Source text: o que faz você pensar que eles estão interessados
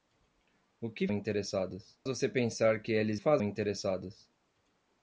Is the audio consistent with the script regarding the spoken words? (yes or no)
no